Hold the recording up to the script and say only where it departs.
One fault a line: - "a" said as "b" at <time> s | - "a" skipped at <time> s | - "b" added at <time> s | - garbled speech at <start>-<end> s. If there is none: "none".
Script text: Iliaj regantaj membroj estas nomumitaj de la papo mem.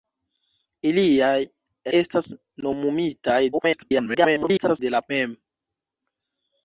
- "regantaj membroj" skipped at 1.4 s
- garbled speech at 3.5-4.8 s
- "papo" skipped at 5.0 s